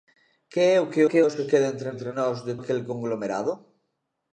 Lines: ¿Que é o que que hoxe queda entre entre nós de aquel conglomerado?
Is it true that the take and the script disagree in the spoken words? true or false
false